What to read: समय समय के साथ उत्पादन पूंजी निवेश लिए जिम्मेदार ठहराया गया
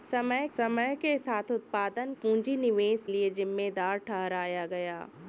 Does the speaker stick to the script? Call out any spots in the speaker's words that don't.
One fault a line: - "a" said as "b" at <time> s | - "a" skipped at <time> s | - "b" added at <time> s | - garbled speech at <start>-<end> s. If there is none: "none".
none